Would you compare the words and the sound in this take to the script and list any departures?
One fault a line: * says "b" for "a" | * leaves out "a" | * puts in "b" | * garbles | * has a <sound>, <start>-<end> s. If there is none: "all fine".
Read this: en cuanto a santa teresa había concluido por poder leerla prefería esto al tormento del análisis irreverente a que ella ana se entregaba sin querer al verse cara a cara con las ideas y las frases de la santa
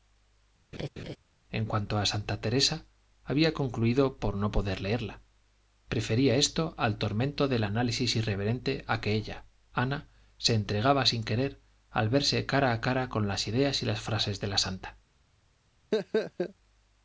* has a laugh, 0.7-1.2 s
* puts in "no"
* has a laugh, 15.9-16.5 s